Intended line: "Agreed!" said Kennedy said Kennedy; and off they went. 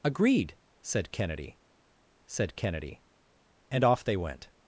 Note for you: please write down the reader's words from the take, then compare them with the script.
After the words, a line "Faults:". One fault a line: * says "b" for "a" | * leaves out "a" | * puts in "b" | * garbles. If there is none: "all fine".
"Agreed!" said Kennedy said Kennedy; and off they went.
Faults:
all fine